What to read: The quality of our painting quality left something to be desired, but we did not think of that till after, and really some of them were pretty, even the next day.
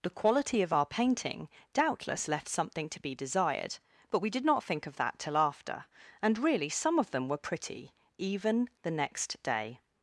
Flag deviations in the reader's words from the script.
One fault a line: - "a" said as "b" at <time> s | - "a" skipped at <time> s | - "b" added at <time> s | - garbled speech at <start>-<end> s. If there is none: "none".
- "quality" said as "doubtless" at 1.7 s